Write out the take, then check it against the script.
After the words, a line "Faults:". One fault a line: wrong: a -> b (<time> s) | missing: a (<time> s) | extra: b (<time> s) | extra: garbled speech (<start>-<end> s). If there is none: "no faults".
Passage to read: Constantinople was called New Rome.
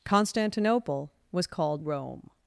Constantinople was called Rome.
Faults:
missing: New (1.9 s)